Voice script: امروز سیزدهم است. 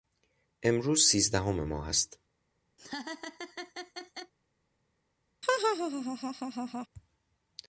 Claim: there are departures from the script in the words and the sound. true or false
true